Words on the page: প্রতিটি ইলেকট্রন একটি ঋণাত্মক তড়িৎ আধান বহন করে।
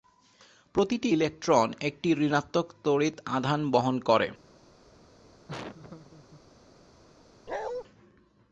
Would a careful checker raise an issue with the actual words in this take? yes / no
no